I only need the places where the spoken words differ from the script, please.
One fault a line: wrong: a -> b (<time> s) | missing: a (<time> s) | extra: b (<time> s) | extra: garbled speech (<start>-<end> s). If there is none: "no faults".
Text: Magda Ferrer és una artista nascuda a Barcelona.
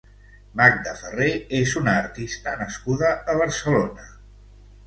no faults